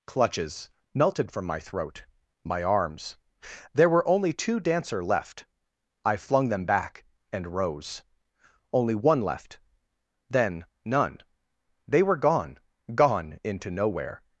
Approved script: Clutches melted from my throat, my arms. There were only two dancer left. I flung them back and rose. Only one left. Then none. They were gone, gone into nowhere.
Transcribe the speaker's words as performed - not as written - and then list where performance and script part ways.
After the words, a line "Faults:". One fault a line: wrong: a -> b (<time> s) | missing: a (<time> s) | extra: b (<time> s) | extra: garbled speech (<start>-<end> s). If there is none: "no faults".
Clutches melted from my throat, my arms. There were only two dancer left. I flung them back and rose. Only one left. Then none. They were gone, gone into nowhere.
Faults:
no faults